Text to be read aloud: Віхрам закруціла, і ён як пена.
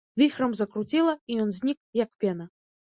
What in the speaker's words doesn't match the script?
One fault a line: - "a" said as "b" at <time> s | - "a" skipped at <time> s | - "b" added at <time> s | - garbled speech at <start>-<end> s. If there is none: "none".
- "знік" added at 1.6 s